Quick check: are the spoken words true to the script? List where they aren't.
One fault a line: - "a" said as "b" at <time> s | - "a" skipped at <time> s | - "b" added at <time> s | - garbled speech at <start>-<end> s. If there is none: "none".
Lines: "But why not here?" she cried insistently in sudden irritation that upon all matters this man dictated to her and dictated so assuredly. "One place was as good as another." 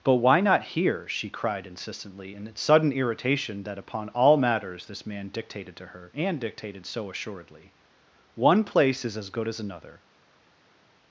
- "was" said as "is" at 9.0 s